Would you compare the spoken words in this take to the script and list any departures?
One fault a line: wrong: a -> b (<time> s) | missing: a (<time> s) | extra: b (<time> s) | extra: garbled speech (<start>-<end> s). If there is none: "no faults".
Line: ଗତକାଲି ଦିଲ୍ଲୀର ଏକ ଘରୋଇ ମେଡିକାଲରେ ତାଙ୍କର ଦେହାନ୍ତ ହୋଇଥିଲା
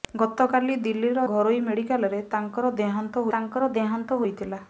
missing: ଏକ (1.3 s)
extra: ତାଙ୍କର ଦେହାନ୍ତ (3.3 s)